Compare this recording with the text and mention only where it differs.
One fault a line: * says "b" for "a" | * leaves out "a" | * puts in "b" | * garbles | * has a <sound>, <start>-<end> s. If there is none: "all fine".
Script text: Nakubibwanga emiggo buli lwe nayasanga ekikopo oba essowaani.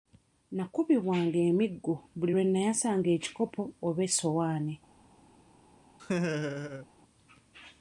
* has a laugh, 6.0-6.9 s